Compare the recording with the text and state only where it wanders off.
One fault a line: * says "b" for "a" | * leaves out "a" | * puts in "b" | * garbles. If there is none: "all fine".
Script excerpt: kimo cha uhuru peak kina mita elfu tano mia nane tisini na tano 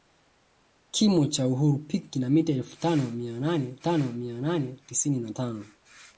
* puts in "tano mia nane"